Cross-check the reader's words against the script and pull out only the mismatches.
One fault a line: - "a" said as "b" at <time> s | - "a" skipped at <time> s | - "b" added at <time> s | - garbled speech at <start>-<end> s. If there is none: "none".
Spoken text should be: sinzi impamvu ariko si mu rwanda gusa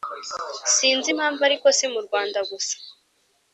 none